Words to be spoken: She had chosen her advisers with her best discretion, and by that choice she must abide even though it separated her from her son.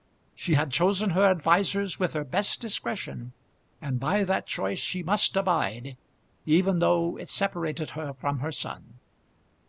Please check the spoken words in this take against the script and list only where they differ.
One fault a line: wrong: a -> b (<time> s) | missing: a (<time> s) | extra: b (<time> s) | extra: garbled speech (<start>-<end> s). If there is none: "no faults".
no faults